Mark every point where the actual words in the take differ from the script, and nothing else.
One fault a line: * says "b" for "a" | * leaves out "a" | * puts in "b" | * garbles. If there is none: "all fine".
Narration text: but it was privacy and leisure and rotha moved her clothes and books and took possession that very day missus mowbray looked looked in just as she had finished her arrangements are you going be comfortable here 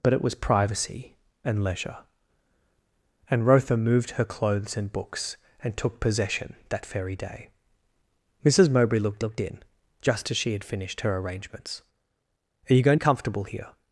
all fine